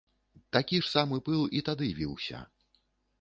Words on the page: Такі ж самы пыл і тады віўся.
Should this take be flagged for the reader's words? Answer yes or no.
no